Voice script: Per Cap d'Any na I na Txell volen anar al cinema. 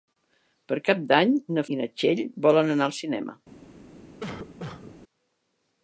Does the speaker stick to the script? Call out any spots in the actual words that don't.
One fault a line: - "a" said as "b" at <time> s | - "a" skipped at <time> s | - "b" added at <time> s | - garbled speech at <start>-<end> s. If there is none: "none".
none